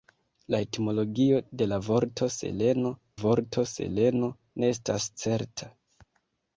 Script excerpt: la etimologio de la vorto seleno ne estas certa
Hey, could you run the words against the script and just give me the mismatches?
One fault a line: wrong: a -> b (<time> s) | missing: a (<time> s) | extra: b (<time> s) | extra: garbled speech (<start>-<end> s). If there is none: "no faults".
extra: vorto seleno (3.2 s)